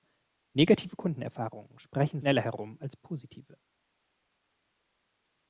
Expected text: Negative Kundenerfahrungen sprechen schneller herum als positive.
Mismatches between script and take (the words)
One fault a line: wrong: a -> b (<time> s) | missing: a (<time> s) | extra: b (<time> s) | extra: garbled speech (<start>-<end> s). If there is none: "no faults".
no faults